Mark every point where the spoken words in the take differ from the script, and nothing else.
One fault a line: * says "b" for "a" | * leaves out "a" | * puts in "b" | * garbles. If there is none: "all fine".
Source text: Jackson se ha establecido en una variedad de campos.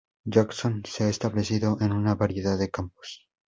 all fine